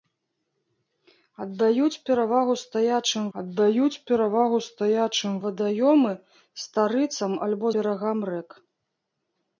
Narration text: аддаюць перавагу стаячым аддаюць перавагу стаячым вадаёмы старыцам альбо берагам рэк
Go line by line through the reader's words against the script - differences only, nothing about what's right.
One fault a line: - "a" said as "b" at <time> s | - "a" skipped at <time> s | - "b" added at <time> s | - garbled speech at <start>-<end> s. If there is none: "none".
none